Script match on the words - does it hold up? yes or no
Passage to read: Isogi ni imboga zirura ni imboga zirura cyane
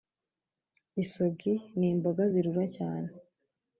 no